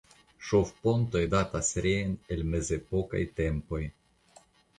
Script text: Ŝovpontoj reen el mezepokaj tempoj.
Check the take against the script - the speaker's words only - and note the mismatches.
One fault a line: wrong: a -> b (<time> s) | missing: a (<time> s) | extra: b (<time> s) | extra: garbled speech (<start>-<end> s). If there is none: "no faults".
extra: datas (1.3 s)